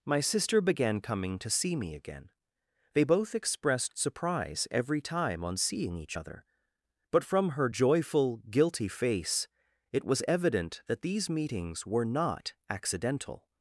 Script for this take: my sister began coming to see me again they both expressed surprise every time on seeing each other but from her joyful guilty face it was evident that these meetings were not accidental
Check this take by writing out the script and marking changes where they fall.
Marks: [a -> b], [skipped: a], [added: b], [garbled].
my sister began coming to see me again they both expressed surprise every time on seeing each other but from her joyful guilty face it was evident that these meetings were not accidental